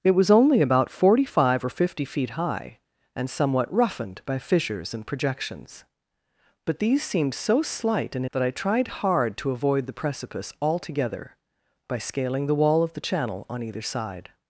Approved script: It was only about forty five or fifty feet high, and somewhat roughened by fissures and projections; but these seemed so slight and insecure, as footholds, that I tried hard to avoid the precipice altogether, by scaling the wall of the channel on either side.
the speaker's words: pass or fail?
fail